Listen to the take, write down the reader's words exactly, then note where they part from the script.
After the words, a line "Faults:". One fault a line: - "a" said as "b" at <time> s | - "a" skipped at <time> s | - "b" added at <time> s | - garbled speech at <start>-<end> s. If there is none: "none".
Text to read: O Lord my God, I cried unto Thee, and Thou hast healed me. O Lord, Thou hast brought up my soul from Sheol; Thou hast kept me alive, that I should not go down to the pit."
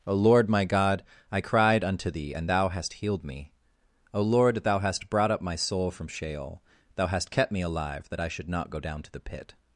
O Lord my God, I cried unto Thee, and Thou hast healed me. O Lord, Thou hast brought up my soul from Sheol; Thou hast kept me alive, that I should not go down to the pit."
Faults:
none